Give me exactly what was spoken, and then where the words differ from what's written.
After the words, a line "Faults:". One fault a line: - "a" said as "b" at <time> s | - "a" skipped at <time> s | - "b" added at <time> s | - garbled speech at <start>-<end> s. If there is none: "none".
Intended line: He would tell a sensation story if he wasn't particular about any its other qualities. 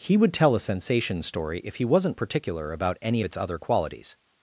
He would tell a sensation story if he wasn't particular about any its other qualities.
Faults:
none